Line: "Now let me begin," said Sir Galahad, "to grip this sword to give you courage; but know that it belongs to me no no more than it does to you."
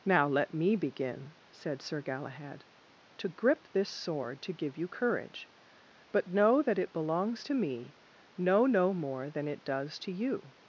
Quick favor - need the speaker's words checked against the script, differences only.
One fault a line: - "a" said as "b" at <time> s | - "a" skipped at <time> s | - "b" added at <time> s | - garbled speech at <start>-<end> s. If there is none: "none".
none